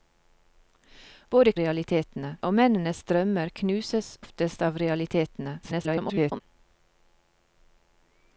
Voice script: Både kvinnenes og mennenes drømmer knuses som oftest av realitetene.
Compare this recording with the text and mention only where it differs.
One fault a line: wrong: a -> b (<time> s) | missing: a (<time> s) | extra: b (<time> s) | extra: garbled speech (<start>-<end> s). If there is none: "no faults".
wrong: kvinnenes -> realitetene (1.6 s)
missing: som (4.1 s)
extra: garbled speech (5.6-6.4 s)